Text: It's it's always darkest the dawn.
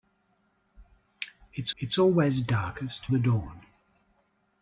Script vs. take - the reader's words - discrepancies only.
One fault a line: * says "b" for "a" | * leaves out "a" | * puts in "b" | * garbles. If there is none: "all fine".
all fine